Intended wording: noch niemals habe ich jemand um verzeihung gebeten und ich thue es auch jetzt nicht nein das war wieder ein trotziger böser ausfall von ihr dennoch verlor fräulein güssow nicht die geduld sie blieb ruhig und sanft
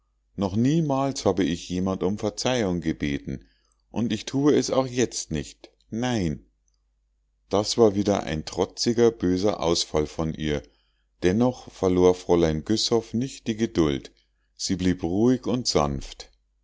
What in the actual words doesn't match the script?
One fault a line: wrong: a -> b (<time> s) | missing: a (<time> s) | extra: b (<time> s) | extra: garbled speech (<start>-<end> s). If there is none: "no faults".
no faults